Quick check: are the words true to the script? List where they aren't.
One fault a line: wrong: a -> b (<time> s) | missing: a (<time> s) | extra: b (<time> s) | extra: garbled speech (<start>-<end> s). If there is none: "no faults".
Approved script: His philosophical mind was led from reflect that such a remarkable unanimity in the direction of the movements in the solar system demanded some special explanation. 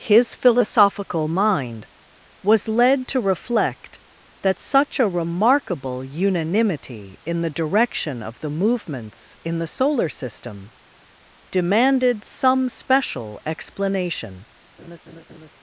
wrong: from -> to (3.1 s)